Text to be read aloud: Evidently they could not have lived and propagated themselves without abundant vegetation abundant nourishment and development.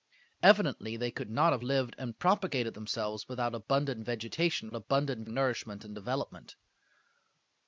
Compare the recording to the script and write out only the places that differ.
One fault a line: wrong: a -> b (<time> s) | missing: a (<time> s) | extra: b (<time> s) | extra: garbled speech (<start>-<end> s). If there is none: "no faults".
no faults